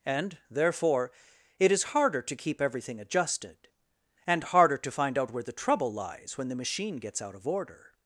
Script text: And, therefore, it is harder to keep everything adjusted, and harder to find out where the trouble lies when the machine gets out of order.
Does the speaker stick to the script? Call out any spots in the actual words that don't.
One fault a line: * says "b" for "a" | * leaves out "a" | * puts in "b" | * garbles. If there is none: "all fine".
all fine